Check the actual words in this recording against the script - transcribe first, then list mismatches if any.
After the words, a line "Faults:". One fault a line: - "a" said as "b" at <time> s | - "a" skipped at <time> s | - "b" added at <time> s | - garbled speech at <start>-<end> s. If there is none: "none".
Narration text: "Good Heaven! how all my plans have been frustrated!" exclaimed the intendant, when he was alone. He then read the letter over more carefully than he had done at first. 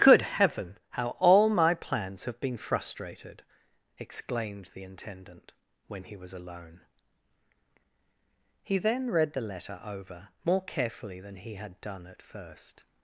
"Good Heaven! how all my plans have been frustrated!" exclaimed the intendant, when he was alone. He then read the letter over more carefully than he had done at first.
Faults:
none